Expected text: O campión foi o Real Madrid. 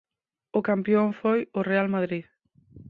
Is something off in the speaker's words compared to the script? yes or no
no